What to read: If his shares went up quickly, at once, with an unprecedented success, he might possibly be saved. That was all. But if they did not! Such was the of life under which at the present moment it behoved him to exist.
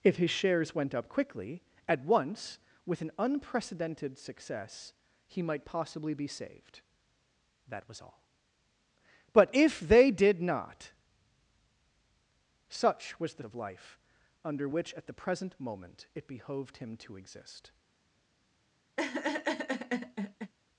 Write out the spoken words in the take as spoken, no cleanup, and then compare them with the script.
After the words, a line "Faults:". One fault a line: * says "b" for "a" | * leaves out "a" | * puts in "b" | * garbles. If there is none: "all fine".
If his shares went up quickly, at once, with an unprecedented success, he might possibly be saved. That was all. But if they did not! Such was the of life under which at the present moment it behoved him to exist.
Faults:
all fine